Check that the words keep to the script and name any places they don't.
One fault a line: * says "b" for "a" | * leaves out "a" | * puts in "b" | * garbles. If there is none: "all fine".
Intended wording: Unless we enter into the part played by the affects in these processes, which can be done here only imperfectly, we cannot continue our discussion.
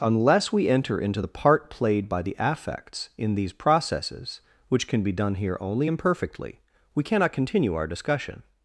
all fine